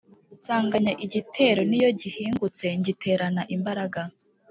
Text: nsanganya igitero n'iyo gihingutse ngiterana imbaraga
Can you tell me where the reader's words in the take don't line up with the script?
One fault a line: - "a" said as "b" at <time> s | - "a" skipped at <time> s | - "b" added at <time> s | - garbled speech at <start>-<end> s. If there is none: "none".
none